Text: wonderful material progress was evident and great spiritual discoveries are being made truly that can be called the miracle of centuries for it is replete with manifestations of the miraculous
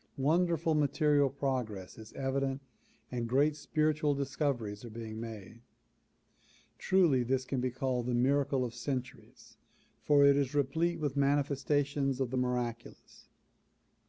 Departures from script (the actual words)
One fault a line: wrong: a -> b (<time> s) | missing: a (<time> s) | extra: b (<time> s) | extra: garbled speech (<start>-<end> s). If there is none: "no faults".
wrong: was -> is (2.0 s)
wrong: that -> this (7.2 s)